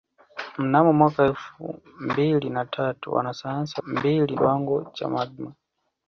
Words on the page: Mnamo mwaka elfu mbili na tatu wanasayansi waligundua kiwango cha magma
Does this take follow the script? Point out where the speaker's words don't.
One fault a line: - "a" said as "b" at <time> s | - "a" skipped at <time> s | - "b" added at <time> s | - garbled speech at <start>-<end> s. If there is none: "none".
- "waligundua" said as "mbili" at 3.9 s